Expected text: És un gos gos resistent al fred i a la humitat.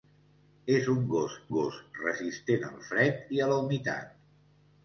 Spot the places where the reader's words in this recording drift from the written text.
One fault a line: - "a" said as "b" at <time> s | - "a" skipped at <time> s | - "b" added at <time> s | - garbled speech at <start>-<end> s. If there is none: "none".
none